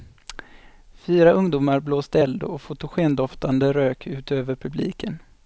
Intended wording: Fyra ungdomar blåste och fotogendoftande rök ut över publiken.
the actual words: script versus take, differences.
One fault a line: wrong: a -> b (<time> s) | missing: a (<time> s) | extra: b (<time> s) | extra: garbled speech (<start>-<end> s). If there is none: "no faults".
extra: eld (2.2 s)